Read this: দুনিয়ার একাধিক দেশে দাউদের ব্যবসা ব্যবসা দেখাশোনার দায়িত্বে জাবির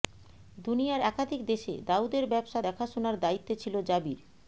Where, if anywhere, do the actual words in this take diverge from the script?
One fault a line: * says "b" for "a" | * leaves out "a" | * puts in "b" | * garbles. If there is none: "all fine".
* leaves out "ব্যবসা"
* puts in "ছিল"